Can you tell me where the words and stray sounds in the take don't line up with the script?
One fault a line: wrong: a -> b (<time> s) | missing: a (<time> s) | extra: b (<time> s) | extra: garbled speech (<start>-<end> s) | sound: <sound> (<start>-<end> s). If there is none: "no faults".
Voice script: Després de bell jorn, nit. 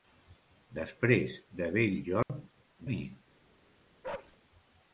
sound: dropout (2.2-2.3 s)
sound: bark (4.0-4.4 s)